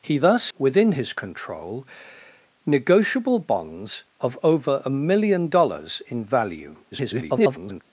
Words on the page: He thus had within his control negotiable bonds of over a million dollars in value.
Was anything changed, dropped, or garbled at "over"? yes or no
no